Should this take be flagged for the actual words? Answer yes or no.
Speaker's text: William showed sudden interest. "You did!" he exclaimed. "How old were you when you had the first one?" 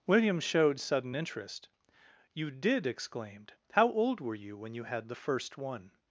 yes